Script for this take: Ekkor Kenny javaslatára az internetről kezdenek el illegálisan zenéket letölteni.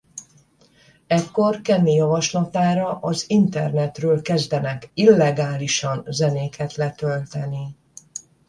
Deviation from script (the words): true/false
true